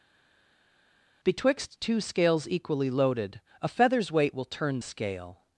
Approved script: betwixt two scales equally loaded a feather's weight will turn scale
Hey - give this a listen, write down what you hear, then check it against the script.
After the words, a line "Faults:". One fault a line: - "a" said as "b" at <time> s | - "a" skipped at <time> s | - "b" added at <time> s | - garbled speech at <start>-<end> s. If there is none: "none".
betwixt two scales equally loaded a feather's weight will turn scale
Faults:
none